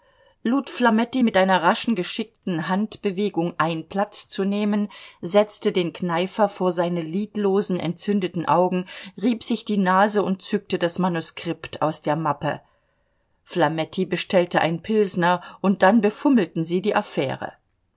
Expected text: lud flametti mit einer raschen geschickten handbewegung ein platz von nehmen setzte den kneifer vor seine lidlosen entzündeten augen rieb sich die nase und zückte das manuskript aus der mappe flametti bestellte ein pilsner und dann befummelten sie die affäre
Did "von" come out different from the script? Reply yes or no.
yes